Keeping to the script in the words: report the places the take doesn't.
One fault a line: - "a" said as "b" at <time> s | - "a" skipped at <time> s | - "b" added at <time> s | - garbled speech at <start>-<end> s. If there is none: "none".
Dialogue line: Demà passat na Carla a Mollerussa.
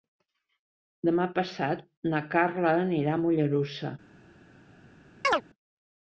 - "anirà" added at 2.9 s